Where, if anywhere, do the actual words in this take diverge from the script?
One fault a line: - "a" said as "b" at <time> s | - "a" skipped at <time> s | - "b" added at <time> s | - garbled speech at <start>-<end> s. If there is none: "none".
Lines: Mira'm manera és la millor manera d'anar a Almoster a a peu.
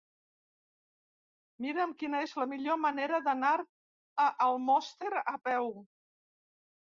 - "manera" said as "quina" at 2.0 s
- "a" skipped at 5.4 s